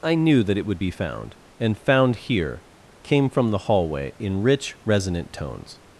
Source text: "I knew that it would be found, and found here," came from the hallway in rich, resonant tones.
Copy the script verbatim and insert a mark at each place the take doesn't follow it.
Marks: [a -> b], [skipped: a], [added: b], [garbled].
"I knew that it would be found, and found here," came from the hallway in rich, resonant tones.